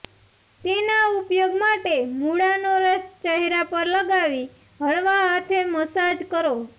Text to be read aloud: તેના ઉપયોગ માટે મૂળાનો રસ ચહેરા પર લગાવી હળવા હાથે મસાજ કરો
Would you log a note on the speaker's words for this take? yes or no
no